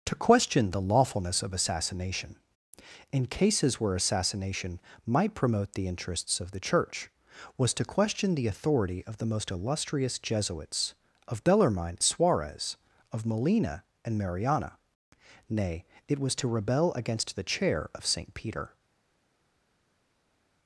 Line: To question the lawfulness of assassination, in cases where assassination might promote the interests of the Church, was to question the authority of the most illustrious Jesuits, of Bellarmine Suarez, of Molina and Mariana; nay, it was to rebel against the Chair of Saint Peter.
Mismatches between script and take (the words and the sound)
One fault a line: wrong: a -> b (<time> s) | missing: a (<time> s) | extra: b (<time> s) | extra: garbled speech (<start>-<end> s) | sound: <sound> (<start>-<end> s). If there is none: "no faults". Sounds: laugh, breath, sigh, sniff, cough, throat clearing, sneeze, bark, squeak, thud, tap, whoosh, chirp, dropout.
no faults